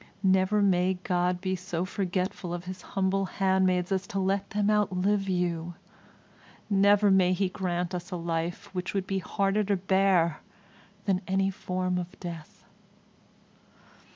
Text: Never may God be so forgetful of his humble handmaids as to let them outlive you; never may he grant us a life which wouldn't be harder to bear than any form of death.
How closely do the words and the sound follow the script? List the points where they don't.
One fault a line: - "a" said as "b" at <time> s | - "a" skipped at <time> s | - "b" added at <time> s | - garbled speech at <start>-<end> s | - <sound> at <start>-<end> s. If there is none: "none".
- "wouldn't" said as "would" at 8.9 s